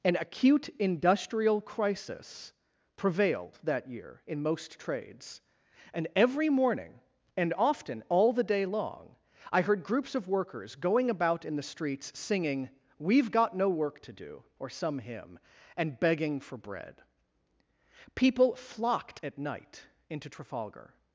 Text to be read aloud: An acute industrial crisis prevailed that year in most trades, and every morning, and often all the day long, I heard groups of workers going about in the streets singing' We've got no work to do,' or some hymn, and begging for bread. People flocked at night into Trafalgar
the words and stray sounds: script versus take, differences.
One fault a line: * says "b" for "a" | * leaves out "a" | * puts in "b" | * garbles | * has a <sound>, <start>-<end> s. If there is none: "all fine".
all fine